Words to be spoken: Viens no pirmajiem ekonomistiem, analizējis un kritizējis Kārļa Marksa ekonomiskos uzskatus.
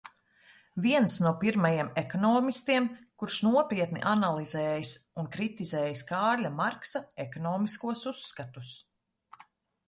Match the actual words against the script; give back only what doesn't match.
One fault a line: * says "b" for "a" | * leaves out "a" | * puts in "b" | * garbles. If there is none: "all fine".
* puts in "kurš nopietni"